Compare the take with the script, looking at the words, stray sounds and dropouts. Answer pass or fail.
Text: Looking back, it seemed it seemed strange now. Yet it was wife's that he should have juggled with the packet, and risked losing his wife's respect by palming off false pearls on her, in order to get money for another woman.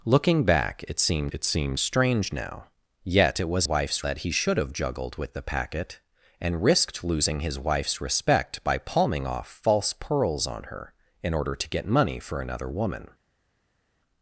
pass